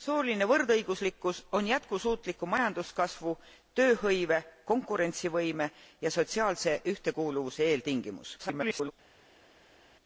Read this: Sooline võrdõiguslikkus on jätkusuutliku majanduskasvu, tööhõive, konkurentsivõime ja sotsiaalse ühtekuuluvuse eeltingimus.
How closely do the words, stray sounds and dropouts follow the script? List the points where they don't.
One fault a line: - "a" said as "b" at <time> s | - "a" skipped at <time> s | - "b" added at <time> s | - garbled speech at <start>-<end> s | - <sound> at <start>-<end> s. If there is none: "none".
- garbled speech at 8.4-8.9 s